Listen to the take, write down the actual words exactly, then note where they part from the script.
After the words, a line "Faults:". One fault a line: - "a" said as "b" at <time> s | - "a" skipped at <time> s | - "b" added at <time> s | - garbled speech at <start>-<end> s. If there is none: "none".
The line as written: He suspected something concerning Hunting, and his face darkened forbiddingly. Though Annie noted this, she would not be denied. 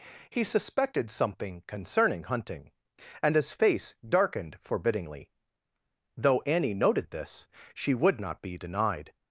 He suspected something concerning Hunting, and his face darkened forbiddingly. Though Annie noted this, she would not be denied.
Faults:
none